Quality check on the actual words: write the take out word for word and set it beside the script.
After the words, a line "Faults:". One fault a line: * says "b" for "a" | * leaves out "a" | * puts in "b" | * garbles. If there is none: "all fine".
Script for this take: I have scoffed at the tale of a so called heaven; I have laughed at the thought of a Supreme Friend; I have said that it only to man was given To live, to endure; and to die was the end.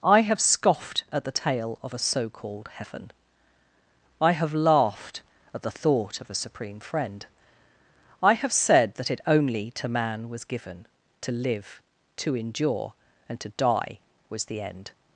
I have scoffed at the tale of a so called heaven; I have laughed at the thought of a Supreme Friend; I have said that it only to man was given To live, to endure; and to die was the end.
Faults:
all fine